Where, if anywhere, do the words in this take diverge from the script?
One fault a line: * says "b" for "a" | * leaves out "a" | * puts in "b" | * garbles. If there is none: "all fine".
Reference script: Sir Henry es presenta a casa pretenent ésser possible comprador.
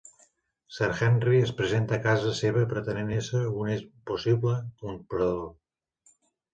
* puts in "seva"
* puts in "un"